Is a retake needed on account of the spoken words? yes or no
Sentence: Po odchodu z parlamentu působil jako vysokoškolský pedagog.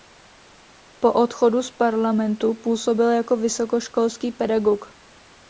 no